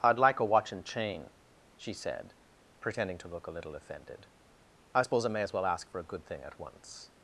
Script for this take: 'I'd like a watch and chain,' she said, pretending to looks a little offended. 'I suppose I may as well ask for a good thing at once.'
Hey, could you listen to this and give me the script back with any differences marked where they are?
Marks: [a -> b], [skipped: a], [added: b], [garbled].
'I'd like a watch and chain,' she said, pretending to [looks -> look] a little offended. 'I suppose I may as well ask for a good thing at once.'